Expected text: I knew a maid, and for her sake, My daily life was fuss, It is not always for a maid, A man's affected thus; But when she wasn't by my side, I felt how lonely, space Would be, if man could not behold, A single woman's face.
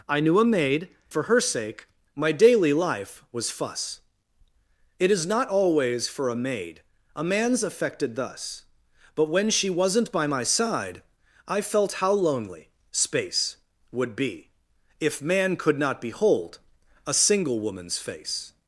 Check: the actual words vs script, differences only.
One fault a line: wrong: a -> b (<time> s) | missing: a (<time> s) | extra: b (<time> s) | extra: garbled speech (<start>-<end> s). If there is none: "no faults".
missing: and (0.9 s)